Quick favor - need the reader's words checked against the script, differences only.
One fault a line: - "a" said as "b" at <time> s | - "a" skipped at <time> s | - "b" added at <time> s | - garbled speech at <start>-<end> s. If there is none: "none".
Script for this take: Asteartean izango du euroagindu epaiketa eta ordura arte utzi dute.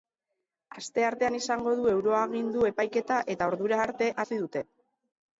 none